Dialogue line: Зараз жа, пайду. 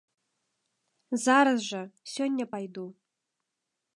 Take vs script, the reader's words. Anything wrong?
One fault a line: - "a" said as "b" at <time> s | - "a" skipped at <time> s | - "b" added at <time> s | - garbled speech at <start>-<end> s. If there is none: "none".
- "сёння" added at 2.1 s